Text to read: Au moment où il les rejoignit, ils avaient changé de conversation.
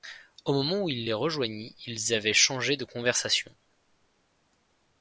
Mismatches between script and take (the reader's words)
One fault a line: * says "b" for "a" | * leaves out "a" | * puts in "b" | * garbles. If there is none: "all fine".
all fine